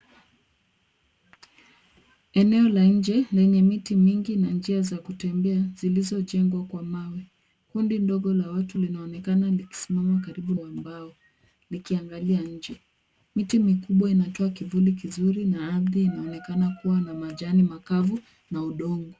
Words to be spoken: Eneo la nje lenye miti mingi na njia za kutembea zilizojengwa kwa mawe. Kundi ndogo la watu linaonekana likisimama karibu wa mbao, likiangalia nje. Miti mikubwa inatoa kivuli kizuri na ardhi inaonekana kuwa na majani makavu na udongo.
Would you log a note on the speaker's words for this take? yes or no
no